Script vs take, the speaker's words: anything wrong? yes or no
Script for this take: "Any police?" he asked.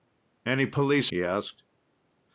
no